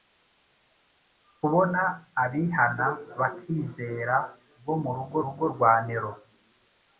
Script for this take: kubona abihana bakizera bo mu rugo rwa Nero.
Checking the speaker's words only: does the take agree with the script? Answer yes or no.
no